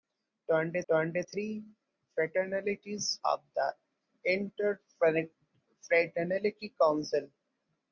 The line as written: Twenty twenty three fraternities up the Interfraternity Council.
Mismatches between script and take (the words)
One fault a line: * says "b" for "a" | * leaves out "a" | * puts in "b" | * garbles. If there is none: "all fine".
all fine